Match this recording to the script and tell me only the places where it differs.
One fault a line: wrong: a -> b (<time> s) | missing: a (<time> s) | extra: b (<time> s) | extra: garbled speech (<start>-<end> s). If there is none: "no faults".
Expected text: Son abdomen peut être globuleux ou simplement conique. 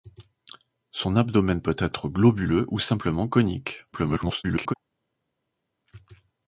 extra: garbled speech (3.9-4.7 s)